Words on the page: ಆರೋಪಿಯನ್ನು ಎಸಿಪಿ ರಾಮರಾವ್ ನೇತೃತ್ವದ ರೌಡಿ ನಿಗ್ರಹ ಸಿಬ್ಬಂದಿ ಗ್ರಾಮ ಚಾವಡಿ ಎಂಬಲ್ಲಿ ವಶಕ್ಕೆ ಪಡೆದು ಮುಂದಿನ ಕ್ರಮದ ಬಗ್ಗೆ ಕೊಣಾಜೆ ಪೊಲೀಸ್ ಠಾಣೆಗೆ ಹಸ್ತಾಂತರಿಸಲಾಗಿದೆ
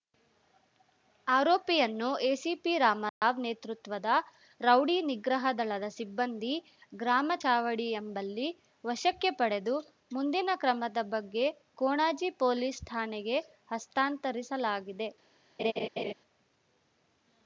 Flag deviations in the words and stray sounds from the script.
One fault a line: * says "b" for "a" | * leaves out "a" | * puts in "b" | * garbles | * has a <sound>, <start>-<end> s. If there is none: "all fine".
* has a dropout, 3.1-3.2 s
* puts in "ದಳದ"
* has a laugh, 15.6-16.1 s